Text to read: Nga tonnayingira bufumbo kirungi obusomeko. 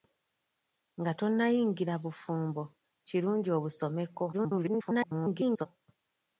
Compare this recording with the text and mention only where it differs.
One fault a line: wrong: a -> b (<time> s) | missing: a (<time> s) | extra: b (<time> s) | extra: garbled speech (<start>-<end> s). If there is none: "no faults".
extra: garbled speech (4.3-5.7 s)